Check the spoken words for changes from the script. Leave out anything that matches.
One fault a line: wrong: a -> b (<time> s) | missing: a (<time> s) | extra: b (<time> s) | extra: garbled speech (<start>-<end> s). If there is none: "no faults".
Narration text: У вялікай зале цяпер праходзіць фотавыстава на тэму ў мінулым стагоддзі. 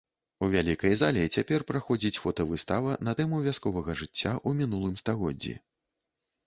extra: вясковага жыцця (3.5 s)